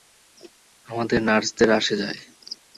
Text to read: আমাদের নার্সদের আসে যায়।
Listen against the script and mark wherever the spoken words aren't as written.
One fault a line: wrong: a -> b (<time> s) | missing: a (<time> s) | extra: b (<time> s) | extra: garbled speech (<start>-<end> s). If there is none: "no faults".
no faults